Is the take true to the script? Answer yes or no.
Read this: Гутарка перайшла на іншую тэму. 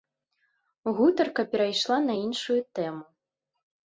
yes